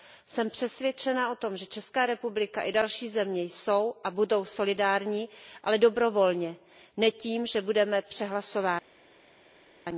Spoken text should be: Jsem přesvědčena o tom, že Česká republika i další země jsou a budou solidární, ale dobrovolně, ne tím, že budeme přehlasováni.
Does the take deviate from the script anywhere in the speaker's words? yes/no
no